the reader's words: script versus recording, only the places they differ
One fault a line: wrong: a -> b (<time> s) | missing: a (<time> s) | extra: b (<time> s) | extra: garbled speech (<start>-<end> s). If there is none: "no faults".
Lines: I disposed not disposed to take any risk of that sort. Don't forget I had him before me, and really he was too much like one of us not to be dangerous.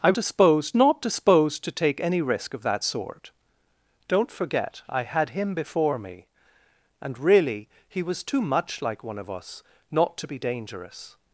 no faults